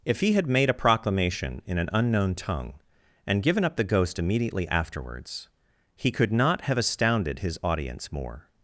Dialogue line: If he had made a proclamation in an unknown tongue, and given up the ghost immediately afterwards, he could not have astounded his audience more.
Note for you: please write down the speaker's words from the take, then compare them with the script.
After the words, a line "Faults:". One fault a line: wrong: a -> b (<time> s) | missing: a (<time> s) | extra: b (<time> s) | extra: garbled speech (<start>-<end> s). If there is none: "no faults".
If he had made a proclamation in an unknown tongue, and given up the ghost immediately afterwards, he could not have astounded his audience more.
Faults:
no faults